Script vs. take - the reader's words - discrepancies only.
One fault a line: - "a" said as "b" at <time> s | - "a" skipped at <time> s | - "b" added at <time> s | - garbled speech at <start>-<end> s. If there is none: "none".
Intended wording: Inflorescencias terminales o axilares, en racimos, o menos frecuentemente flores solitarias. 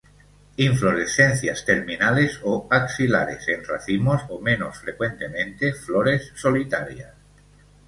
none